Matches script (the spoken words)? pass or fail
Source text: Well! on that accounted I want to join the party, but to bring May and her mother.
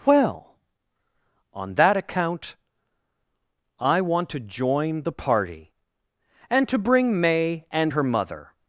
fail